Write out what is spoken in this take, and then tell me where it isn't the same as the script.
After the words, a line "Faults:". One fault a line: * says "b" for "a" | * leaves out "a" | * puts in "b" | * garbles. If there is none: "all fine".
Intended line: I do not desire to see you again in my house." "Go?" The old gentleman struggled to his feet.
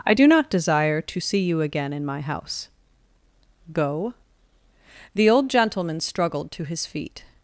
I do not desire to see you again in my house." "Go?" The old gentleman struggled to his feet.
Faults:
all fine